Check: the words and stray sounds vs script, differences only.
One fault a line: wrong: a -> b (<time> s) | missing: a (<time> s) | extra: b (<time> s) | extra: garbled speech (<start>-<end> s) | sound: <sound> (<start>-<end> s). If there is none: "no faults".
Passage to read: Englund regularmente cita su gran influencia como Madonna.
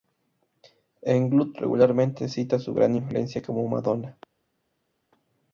no faults